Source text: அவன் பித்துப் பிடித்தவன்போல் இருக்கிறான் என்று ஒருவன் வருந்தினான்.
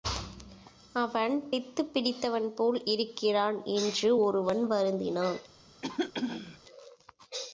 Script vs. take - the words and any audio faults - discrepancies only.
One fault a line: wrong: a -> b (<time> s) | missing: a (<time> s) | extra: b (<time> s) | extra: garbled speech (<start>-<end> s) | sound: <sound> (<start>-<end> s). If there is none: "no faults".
sound: throat clearing (5.8-6.6 s)